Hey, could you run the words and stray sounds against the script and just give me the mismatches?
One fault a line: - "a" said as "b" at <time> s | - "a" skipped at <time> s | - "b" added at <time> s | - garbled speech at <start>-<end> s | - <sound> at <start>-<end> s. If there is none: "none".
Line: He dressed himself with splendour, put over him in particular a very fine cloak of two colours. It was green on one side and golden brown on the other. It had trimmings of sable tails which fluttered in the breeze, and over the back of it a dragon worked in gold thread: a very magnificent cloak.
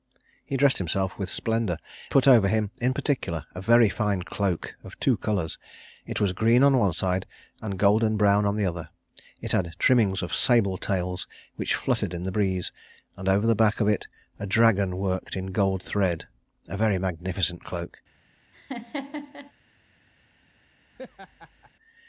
- laugh at 18.5-19.5 s
- laugh at 20.9-21.7 s